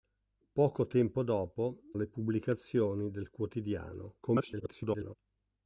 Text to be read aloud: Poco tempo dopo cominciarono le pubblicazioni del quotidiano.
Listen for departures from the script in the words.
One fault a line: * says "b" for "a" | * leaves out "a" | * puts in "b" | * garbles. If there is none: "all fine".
* leaves out "cominciarono"
* garbles